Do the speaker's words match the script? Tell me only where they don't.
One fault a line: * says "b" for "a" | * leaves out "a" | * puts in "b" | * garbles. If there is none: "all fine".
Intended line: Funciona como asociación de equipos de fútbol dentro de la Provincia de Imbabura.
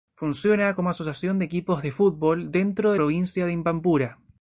* leaves out "la"